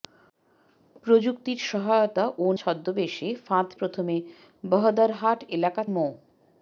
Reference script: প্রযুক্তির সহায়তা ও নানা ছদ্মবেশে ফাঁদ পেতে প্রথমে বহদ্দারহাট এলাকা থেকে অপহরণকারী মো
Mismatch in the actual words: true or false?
true